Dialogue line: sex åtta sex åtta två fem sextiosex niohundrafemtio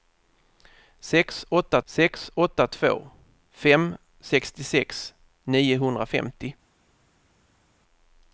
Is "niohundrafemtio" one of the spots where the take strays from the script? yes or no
no